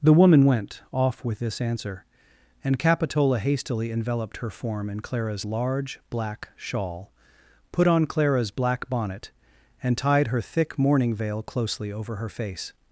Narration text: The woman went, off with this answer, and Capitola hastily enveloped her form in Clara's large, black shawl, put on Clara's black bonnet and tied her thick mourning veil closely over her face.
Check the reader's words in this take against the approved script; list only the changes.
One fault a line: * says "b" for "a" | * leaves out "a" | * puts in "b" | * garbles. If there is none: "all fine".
all fine